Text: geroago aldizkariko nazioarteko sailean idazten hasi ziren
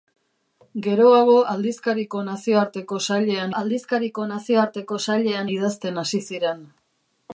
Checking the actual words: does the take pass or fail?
fail